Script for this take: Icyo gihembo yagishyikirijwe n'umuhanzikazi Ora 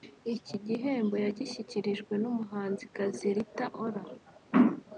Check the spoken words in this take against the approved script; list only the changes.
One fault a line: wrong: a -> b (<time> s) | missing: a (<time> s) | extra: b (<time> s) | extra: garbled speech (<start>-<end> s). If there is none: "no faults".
wrong: Icyo -> Iki (0.3 s)
extra: Rita (3.3 s)